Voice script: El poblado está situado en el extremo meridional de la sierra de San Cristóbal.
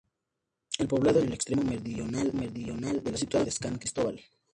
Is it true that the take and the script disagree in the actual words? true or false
true